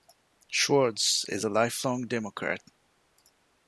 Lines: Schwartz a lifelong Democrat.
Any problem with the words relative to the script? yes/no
yes